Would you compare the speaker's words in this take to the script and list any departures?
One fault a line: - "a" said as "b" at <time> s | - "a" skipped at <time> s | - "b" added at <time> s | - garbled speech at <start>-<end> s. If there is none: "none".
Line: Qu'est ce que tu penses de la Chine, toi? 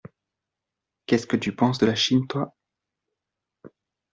none